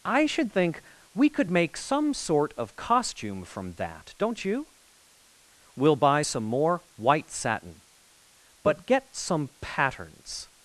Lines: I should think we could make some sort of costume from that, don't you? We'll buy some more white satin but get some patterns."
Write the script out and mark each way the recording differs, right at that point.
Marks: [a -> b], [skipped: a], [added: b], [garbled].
I should think we could make some sort of costume from that, don't you? We'll buy some more white satin but get some patterns."